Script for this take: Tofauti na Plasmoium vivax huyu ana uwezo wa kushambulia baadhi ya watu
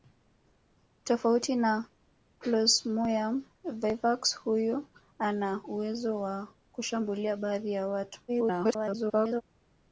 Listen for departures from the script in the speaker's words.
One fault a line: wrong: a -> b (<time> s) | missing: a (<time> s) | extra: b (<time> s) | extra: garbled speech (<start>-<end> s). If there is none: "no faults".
extra: garbled speech (8.3-9.4 s)